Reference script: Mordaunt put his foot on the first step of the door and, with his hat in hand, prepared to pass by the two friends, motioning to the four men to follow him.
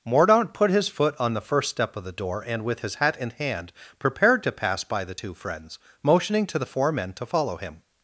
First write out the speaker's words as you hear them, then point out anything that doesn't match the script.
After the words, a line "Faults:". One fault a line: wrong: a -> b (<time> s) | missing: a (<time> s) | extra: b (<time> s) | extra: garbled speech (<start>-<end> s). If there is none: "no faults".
Mordaunt put his foot on the first step of the door and, with his hat in hand, prepared to pass by the two friends, motioning to the four men to follow him.
Faults:
no faults